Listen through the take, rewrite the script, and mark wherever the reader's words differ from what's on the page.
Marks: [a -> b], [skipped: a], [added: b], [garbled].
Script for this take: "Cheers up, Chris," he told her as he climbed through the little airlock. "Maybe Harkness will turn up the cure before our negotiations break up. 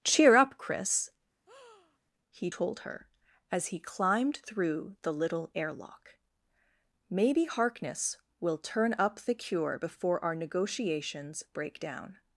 ["Cheers -> Cheer] up, Chris," he told her as he climbed through the little airlock. "Maybe Harkness will turn up the cure before our negotiations break [up. -> down]